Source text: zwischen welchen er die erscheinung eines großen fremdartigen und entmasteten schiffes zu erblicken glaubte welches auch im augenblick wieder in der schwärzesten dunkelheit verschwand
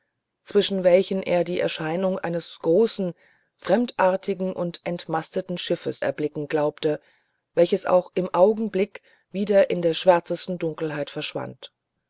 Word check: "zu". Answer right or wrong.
wrong